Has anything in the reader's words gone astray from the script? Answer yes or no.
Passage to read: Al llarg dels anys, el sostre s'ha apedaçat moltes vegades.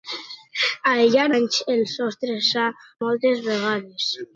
yes